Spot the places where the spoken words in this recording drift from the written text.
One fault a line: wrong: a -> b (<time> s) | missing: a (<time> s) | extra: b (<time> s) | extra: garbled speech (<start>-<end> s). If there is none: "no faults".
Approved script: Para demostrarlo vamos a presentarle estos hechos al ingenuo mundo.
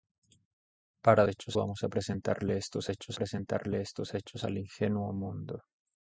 wrong: demostrarlo -> hechos (1.3 s)
extra: presentarle estos hechos (3.1 s)